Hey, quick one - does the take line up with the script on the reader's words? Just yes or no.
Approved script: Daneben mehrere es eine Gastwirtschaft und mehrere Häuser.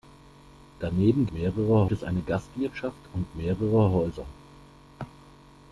yes